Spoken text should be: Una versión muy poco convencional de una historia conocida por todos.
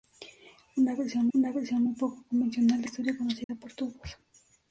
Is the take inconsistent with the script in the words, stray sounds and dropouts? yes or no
yes